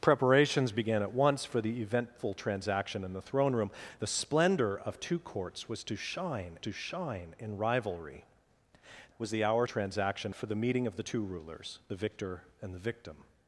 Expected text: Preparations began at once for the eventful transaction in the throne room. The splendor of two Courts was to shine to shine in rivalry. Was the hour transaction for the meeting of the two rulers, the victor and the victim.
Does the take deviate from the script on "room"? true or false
false